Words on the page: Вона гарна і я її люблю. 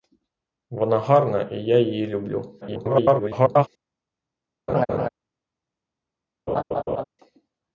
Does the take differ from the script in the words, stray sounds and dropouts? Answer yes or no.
yes